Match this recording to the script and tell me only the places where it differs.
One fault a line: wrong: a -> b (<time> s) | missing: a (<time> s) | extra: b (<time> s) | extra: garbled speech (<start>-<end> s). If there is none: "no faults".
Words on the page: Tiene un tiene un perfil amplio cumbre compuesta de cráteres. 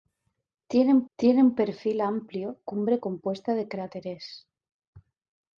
no faults